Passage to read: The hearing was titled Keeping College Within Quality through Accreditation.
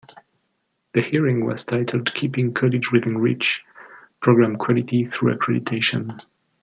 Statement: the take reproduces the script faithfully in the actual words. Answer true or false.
false